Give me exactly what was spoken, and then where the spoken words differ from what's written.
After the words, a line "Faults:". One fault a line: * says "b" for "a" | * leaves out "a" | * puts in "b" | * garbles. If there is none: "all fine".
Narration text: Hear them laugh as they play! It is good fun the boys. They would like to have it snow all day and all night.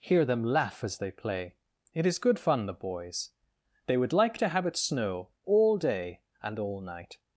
Hear them laugh as they play! It is good fun the boys. They would like to have it snow all day and all night.
Faults:
all fine